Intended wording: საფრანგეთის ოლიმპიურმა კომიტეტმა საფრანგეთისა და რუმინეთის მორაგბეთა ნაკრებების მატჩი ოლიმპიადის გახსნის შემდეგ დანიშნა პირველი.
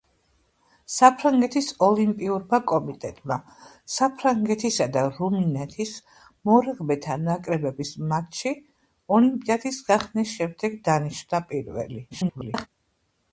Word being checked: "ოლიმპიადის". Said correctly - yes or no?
yes